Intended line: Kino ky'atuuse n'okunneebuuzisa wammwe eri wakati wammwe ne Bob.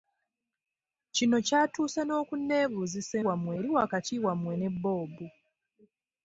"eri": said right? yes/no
yes